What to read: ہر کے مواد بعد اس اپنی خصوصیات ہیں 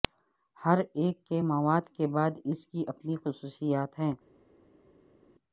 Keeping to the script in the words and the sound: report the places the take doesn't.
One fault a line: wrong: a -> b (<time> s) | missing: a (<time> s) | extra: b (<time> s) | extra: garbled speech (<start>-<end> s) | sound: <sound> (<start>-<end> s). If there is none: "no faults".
extra: ایک (0.9 s)
extra: کے (1.9 s)
extra: کی (2.7 s)